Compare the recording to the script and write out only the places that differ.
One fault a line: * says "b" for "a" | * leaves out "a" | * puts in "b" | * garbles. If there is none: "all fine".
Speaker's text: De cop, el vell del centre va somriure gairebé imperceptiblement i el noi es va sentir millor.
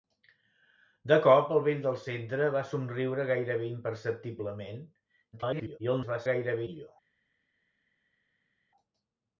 * garbles
* leaves out "noi"
* says "gairebé" for "sentir"